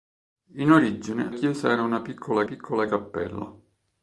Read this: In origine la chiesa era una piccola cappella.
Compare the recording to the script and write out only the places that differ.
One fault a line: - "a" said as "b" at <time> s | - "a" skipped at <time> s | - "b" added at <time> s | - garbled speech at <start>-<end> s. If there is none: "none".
- "la" skipped at 1.3 s
- "piccola" added at 2.4 s